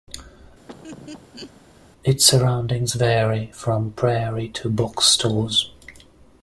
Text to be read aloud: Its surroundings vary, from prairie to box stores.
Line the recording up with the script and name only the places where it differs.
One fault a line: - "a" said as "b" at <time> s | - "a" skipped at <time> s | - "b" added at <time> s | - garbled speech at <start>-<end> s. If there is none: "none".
none